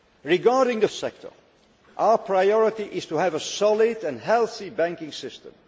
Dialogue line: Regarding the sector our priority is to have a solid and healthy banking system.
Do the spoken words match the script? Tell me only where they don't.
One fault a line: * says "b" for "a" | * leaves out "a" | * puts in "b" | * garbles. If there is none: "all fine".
all fine